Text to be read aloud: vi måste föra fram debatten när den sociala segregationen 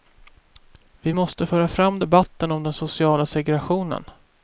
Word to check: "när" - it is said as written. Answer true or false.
false